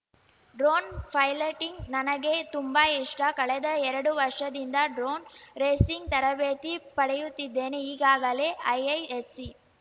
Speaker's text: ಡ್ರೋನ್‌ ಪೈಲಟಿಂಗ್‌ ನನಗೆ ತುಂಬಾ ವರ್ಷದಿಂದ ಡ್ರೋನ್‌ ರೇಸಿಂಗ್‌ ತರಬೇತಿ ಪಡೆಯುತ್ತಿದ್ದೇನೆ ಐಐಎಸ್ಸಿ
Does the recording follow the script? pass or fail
fail